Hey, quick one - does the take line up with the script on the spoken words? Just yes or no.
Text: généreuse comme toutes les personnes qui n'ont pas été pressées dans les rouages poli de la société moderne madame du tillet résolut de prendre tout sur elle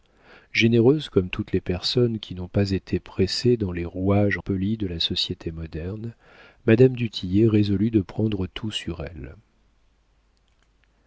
yes